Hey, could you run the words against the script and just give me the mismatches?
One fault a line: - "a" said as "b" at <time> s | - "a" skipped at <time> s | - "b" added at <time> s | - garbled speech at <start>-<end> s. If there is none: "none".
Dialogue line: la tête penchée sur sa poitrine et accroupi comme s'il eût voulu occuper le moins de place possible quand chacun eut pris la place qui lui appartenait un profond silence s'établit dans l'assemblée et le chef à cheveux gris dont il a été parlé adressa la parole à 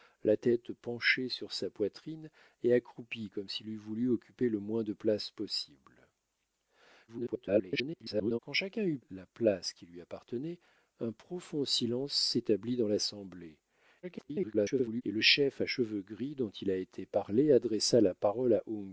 - garbled speech at 7.1-8.4 s
- "pris" skipped at 9.0 s
- garbled speech at 14.0-15.0 s